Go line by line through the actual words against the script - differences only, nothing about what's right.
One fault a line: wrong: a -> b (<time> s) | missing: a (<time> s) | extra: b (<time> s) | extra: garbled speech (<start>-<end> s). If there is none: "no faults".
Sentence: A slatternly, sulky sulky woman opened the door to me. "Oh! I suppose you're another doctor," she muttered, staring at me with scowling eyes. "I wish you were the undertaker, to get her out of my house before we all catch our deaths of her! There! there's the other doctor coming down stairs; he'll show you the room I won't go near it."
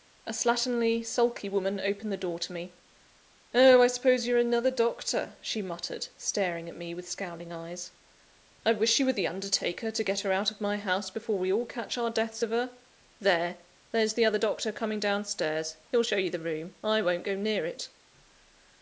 missing: sulky (1.5 s)